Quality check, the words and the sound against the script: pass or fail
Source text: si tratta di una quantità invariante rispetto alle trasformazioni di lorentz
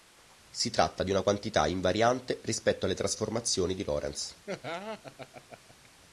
fail